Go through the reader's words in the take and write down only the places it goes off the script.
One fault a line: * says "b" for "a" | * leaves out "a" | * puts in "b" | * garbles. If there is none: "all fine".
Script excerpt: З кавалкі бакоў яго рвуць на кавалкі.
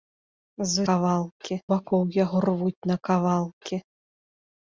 all fine